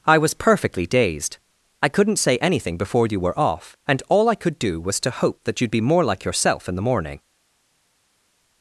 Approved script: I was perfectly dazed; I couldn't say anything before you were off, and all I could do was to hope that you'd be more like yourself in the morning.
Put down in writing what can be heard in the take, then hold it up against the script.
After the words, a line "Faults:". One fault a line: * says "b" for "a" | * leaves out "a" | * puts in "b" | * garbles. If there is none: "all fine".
I was perfectly dazed; I couldn't say anything before you were off, and all I could do was to hope that you'd be more like yourself in the morning.
Faults:
all fine